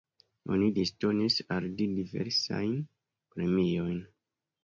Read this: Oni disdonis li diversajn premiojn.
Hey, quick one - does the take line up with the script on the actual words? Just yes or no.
no